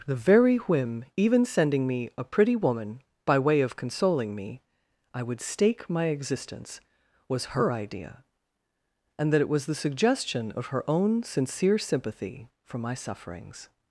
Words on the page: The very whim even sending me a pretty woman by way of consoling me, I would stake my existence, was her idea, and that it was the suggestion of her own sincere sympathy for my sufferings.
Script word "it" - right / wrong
right